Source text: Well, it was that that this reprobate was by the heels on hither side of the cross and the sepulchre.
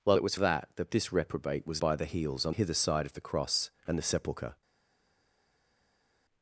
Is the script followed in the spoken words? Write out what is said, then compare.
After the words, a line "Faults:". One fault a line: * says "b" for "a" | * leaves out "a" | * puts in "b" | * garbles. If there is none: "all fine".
Well, it was that that this reprobate was by the heels on hither side of the cross and the sepulchre.
Faults:
all fine